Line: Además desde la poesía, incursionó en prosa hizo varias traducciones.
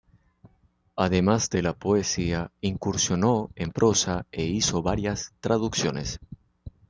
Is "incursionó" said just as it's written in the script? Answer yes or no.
yes